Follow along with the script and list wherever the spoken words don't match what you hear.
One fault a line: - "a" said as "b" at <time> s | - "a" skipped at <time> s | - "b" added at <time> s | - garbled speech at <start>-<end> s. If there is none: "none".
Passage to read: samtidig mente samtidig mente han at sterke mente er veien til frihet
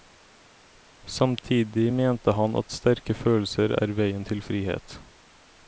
- "samtidig mente" skipped at 2.3 s
- "mente" said as "følelser" at 3.2 s